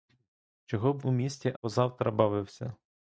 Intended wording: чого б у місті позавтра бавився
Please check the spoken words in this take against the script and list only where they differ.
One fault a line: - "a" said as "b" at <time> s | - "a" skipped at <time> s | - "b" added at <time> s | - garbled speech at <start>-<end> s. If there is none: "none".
none